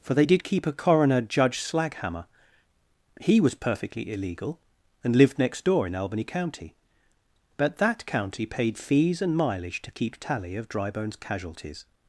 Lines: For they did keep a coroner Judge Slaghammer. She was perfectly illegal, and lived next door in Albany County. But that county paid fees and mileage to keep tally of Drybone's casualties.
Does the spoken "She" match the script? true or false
false